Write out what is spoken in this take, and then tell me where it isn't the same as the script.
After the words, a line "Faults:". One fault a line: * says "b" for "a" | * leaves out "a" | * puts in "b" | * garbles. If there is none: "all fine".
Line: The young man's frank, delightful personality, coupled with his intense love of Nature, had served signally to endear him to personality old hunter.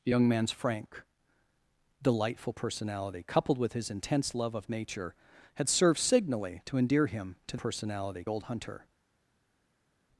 The young man's frank, delightful personality, coupled with his intense love of Nature, had served signally to endear him to personality old hunter.
Faults:
all fine